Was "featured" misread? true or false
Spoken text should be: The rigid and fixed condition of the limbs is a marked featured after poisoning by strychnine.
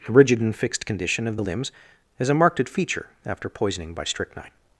true